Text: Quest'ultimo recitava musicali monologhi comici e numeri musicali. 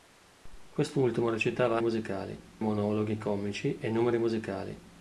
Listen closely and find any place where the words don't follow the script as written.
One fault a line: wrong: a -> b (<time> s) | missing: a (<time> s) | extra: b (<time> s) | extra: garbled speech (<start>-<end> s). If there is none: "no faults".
no faults